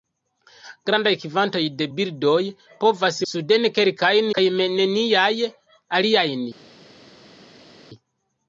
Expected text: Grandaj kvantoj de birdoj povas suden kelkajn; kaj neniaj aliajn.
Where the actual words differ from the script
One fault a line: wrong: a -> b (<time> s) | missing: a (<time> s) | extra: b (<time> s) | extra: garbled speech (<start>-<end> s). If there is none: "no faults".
no faults